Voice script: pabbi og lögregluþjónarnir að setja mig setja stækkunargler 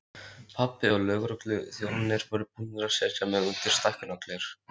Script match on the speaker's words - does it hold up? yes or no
no